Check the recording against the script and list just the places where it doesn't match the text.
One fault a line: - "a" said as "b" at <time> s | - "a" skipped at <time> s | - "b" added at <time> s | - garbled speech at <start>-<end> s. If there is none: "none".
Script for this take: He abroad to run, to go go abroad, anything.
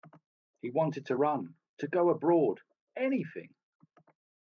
- "abroad" said as "wanted" at 0.7 s
- "go" skipped at 2.1 s